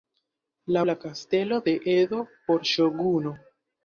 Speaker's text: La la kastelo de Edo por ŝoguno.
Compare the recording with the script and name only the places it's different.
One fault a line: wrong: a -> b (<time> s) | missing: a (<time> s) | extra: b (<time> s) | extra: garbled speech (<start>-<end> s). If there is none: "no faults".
no faults